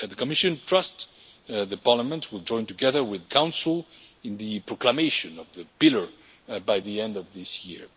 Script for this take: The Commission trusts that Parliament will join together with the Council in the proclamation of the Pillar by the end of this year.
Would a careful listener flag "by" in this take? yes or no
no